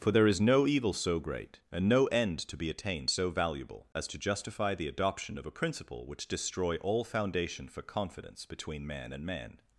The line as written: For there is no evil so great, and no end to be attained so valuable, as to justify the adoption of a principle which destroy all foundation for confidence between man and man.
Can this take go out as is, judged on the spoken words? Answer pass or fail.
pass